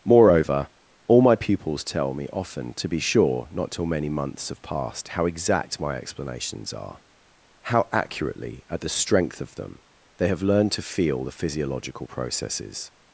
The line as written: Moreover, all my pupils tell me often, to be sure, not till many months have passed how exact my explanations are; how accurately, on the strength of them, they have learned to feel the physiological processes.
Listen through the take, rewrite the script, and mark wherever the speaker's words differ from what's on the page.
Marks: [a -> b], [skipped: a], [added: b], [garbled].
Moreover, all my pupils tell me often, to be sure, not till many months have passed how exact my explanations are; how accurately, [on -> at] the strength of them, they have learned to feel the physiological processes.